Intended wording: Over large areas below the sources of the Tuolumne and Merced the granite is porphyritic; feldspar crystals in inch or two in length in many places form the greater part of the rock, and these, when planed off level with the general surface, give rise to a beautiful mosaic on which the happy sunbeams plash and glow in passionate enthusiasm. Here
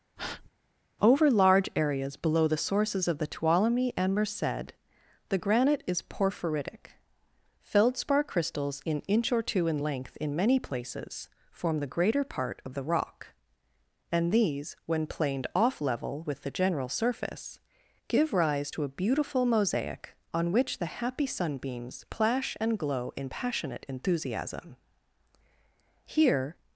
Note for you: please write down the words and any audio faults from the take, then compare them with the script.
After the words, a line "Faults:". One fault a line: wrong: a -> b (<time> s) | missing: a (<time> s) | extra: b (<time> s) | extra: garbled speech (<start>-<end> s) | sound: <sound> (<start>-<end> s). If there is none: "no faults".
Over large areas below the sources of the Tuolumne and Merced the granite is porphyritic; feldspar crystals in inch or two in length in many places form the greater part of the rock, and these, when planed off level with the general surface, give rise to a beautiful mosaic on which the happy sunbeams plash and glow in passionate enthusiasm. Here
Faults:
sound: breath (0.2-0.5 s)